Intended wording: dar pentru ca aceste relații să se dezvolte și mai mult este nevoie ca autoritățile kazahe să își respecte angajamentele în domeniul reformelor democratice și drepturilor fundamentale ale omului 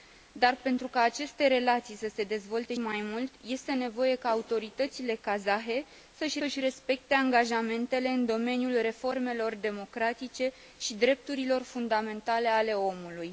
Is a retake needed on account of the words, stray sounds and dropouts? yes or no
yes